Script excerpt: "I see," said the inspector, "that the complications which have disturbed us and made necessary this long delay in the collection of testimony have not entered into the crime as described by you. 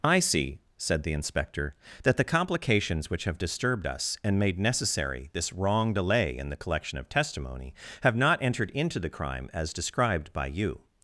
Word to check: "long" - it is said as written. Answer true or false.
false